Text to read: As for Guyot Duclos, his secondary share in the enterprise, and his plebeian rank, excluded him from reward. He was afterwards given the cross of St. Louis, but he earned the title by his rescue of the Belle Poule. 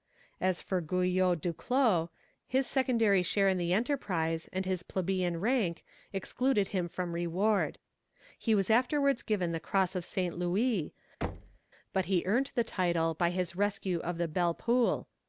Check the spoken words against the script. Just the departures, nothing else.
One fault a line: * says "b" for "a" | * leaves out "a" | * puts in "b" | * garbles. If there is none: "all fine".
all fine